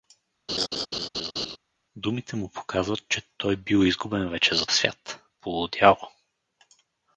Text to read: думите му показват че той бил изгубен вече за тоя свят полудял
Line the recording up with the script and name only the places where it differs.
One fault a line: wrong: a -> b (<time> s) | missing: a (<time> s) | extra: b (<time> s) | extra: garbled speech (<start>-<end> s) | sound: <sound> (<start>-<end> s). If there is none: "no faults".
sound: laugh (0.5-1.6 s)
missing: тоя (4.7 s)